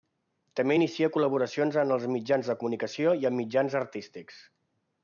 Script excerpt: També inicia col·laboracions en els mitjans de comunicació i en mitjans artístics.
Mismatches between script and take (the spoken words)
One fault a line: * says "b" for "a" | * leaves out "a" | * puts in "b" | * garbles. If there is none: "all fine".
all fine